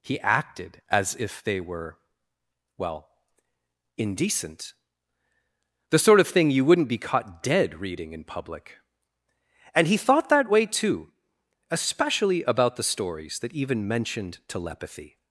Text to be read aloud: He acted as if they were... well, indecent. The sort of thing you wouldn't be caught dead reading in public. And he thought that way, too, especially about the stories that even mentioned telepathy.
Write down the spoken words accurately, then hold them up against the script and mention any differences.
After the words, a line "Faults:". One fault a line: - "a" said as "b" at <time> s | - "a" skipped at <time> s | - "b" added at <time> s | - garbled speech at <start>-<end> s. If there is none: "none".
He acted as if they were... well, indecent. The sort of thing you wouldn't be caught dead reading in public. And he thought that way, too, especially about the stories that even mentioned telepathy.
Faults:
none